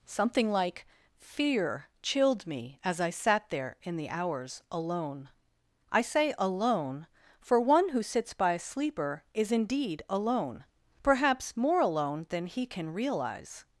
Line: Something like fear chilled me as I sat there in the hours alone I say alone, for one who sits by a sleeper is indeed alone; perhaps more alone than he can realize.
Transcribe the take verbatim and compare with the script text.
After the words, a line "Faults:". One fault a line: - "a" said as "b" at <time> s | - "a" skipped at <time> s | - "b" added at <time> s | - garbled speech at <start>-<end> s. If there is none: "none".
Something like fear chilled me as I sat there in the hours alone I say alone, for one who sits by a sleeper is indeed alone; perhaps more alone than he can realize.
Faults:
none